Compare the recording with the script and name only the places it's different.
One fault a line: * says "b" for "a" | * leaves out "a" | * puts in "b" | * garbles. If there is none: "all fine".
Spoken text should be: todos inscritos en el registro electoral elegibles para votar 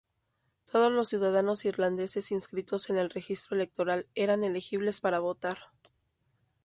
* puts in "los ciudadanos irlandeses"
* puts in "eran"